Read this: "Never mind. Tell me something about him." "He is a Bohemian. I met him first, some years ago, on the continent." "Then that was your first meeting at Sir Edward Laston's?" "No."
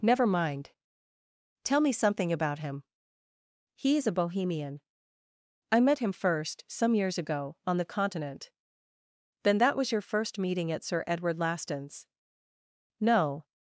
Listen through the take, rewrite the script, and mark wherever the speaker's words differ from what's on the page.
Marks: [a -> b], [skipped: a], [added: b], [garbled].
"Never mind. Tell me something about him." "He is a Bohemian. I met him first, some years ago, on the continent." "Then that was your first meeting at Sir Edward Laston's?" "No."